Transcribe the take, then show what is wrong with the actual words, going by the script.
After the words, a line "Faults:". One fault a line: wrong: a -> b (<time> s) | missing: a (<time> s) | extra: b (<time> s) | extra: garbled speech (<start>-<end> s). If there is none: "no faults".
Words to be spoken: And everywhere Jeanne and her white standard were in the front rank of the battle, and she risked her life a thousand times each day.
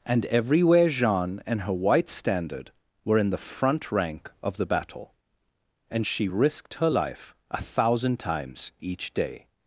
And everywhere Jeanne and her white standard were in the front rank of the battle, and she risked her life a thousand times each day.
Faults:
no faults